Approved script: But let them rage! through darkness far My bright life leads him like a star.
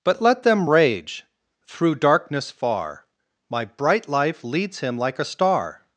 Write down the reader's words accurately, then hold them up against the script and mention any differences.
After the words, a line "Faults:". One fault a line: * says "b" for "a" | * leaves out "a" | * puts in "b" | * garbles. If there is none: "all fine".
But let them rage! through darkness far My bright life leads him like a star.
Faults:
all fine